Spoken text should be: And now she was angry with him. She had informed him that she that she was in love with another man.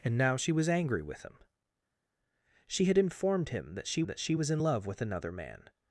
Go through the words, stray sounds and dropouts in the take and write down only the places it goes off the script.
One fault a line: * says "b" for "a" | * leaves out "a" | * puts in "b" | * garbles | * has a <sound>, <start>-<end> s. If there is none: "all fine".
all fine